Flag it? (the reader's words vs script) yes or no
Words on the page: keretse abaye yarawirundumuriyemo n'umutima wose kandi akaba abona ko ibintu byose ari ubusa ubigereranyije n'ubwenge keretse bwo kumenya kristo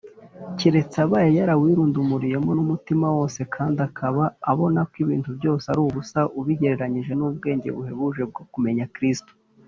yes